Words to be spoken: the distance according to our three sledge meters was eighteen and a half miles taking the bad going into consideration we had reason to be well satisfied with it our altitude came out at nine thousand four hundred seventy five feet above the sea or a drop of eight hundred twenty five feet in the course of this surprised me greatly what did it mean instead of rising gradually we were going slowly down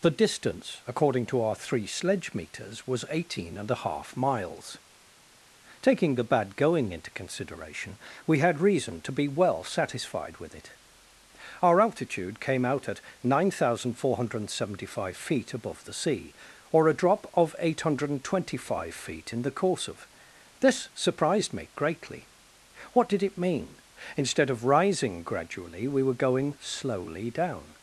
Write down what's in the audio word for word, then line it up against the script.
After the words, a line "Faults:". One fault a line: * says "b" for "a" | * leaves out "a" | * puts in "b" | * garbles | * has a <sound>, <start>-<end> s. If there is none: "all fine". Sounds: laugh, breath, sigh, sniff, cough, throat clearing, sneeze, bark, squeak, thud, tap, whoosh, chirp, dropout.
the distance according to our three sledge meters was eighteen and a half miles taking the bad going into consideration we had reason to be well satisfied with it our altitude came out at nine thousand four hundred seventy five feet above the sea or a drop of eight hundred twenty five feet in the course of this surprised me greatly what did it mean instead of rising gradually we were going slowly down
Faults:
all fine